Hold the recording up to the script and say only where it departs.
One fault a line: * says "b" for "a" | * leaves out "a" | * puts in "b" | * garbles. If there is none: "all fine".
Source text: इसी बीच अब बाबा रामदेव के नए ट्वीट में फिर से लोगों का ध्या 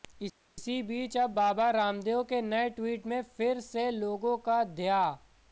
all fine